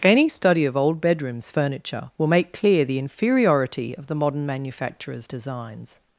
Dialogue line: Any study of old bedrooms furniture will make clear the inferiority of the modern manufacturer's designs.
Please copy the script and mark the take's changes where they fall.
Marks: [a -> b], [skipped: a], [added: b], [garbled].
Any study of old bedrooms furniture will make clear the inferiority of the modern manufacturer's designs.